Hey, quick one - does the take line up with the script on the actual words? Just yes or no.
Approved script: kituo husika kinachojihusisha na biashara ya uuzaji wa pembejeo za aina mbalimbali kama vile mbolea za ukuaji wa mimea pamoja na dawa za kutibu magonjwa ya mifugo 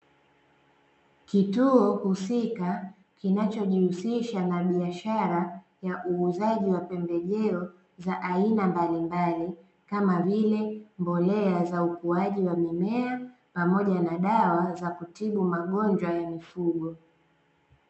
yes